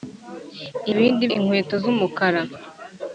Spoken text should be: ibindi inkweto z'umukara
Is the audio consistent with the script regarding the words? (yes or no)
yes